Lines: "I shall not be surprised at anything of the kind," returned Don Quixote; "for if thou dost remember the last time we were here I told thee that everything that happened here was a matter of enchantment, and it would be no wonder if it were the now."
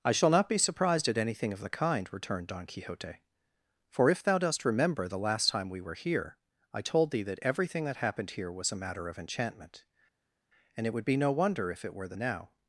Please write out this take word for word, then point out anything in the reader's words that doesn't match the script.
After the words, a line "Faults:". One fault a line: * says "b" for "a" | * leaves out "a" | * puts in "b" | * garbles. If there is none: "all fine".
"I shall not be surprised at anything of the kind," returned Don Quixote; "for if thou dost remember the last time we were here I told thee that everything that happened here was a matter of enchantment, and it would be no wonder if it were the now."
Faults:
all fine